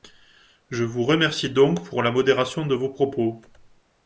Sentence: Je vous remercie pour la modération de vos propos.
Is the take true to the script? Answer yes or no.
no